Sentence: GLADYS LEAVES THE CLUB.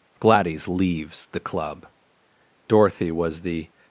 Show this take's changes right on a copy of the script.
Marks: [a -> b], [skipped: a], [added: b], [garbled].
GLADYS LEAVES THE CLUB. [added: Dorothy was the]